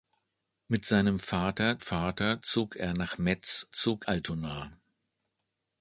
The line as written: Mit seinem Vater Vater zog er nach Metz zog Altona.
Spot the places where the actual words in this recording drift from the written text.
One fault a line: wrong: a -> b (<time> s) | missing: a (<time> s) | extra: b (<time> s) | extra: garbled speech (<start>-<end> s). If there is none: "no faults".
no faults